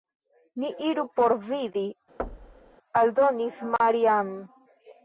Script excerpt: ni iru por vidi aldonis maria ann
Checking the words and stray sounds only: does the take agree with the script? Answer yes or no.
no